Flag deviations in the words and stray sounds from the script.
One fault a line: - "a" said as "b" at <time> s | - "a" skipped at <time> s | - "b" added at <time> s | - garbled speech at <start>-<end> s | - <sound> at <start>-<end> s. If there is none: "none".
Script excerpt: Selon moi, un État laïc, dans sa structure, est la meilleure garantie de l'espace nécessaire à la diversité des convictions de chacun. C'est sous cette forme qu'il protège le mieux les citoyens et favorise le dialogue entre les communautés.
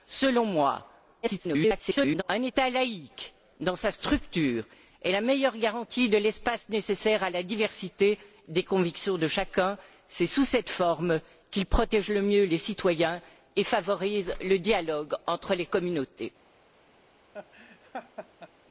- garbled speech at 1.2-2.2 s
- laugh at 17.3-18.5 s